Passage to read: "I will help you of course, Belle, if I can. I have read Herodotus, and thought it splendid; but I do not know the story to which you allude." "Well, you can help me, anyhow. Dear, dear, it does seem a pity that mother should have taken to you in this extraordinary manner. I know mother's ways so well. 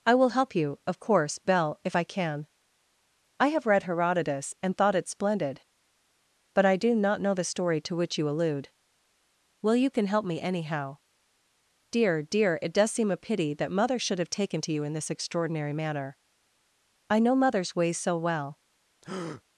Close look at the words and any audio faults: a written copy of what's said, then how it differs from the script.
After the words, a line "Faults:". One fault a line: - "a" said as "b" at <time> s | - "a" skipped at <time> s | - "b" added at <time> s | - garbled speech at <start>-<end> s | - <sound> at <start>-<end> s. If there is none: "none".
"I will help you of course, Belle, if I can. I have read Herodotus, and thought it splendid; but I do not know the story to which you allude." "Well, you can help me, anyhow. Dear, dear, it does seem a pity that mother should have taken to you in this extraordinary manner. I know mother's ways so well.
Faults:
- breath at 19.0-19.4 s